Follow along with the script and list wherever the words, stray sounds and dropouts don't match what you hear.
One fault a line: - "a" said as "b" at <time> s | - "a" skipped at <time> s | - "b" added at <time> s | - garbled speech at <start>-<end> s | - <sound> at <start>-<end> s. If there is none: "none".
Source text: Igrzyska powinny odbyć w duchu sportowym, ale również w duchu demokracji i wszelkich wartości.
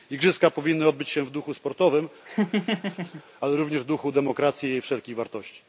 - "się" added at 1.1 s
- laugh at 2.3-3.2 s